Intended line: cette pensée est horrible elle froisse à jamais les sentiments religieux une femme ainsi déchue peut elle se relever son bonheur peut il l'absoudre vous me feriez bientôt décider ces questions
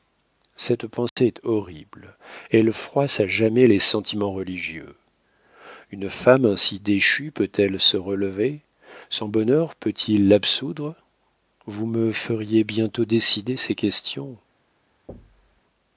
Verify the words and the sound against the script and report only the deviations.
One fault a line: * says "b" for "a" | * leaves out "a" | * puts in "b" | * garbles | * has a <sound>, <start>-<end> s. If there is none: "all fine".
* has a dropout, 1.1-1.2 s
* has a thud, 15.1-15.6 s